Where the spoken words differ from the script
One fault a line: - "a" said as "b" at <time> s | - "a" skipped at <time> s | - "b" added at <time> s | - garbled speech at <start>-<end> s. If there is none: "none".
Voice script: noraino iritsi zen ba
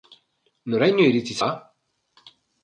- "zen" skipped at 1.4 s